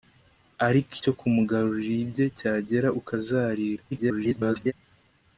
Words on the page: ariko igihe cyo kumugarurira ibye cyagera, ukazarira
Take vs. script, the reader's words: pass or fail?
fail